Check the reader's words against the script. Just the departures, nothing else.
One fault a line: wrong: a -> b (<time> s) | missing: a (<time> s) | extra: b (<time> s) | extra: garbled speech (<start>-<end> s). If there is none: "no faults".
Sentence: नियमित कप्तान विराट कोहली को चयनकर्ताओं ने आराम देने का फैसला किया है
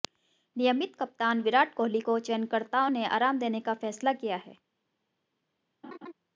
no faults